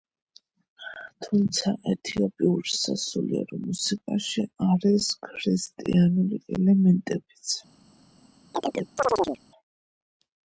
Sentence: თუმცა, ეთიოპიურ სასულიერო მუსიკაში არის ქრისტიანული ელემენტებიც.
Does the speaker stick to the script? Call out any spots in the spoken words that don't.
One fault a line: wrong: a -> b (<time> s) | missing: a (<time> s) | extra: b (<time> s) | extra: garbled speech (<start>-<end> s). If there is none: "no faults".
no faults